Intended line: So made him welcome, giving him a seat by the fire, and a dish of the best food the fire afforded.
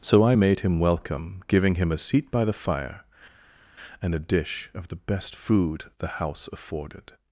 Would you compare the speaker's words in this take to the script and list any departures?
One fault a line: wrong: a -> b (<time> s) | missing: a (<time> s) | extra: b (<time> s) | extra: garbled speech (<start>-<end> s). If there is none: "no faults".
extra: I (0.2 s)
wrong: fire -> house (6.1 s)